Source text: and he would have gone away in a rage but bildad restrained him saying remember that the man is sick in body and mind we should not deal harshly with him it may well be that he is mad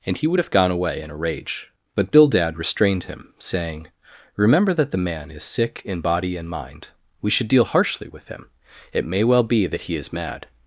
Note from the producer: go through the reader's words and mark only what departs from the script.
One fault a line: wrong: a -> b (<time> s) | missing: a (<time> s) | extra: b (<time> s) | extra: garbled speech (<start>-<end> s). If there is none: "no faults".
missing: not (7.5 s)